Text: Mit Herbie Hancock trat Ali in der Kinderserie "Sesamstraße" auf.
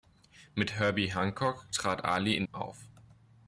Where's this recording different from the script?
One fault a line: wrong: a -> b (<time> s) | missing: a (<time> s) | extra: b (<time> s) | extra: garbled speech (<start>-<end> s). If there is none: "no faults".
missing: der Kinderserie Sesamstraße (2.4 s)